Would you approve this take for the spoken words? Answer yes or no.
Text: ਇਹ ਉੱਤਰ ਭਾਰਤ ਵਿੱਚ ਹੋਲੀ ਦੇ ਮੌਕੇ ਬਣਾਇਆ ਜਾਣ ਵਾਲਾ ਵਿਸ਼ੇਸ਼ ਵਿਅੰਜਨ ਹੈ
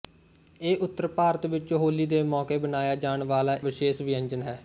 yes